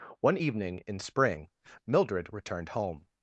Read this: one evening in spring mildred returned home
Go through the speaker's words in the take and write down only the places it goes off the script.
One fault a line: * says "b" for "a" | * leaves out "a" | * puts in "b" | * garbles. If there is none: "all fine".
all fine